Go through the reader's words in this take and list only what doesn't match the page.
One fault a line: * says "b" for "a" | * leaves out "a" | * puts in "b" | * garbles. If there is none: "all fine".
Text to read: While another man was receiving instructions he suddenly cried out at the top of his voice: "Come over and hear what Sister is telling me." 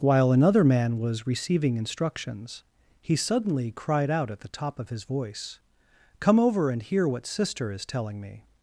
all fine